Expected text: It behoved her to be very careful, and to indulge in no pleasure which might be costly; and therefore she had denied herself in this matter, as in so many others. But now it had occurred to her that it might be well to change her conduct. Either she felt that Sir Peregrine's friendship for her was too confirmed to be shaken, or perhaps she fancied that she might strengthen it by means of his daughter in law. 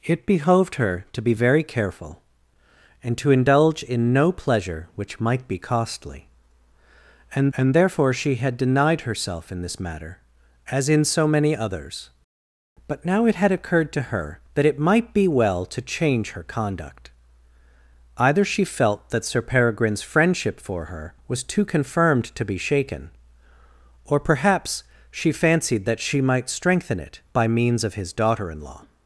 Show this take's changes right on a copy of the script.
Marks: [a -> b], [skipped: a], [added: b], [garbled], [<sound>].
It behoved her to be very careful, and to indulge in no pleasure which might be costly; and [added: and] therefore she had denied herself in this matter, as in so many others. But now it had occurred to her that it might be well to change her conduct. Either she felt that Sir Peregrine's friendship for her was too confirmed to be shaken, or perhaps she fancied that she might strengthen it by means of his daughter in law.